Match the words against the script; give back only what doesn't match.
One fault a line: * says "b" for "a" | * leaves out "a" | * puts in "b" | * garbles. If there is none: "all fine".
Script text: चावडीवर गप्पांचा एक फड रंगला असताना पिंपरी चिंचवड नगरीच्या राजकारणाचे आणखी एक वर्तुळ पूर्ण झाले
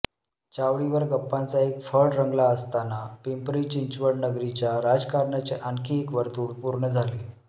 all fine